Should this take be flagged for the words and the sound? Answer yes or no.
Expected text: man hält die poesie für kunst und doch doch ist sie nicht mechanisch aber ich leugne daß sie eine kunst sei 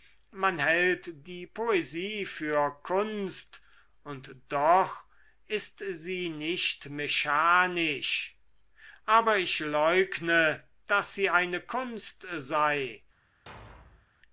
yes